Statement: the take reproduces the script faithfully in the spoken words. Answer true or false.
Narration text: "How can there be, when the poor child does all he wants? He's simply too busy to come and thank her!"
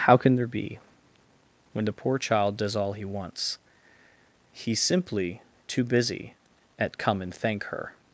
false